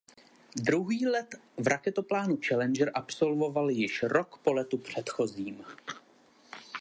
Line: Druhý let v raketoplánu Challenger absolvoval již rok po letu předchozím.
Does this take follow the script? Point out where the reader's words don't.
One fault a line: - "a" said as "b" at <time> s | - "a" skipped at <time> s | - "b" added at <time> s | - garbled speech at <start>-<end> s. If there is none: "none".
none